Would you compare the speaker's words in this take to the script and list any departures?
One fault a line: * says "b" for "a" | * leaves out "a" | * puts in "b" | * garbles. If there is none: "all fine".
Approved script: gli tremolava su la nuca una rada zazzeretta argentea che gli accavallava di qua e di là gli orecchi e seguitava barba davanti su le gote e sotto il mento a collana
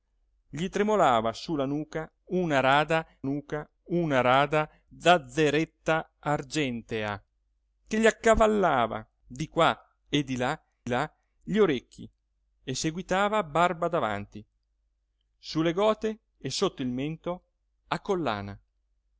* puts in "nuca una rada"
* puts in "là"